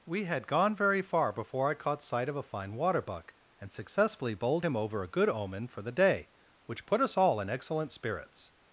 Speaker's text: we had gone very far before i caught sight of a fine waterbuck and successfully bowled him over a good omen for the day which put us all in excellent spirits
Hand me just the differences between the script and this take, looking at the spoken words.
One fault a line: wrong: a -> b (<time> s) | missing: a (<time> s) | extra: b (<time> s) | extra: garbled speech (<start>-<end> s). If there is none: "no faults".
no faults